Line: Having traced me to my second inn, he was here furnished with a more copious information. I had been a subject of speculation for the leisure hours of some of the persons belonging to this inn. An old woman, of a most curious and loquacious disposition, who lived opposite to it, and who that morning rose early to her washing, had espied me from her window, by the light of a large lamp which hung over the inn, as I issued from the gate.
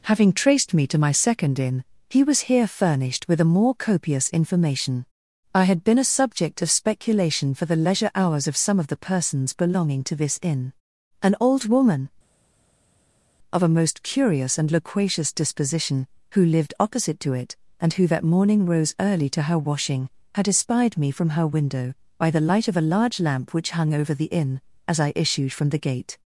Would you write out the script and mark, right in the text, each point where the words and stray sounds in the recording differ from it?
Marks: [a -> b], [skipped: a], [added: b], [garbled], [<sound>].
Having traced me to my second inn, he was here furnished with a more copious information. I had been a subject of speculation for the leisure hours of some of the persons belonging to this inn. An old woman, of a most curious and loquacious disposition, who lived opposite to it, and who that morning rose early to her washing, had espied me from her window, by the light of a large lamp which hung over the inn, as I issued from the gate.